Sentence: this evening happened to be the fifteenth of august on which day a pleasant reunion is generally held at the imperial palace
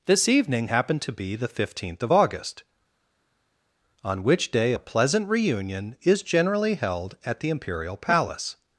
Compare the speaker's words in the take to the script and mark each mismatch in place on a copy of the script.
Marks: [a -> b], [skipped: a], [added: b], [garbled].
this evening happened to be the fifteenth of august on which day a pleasant reunion is generally held at the imperial palace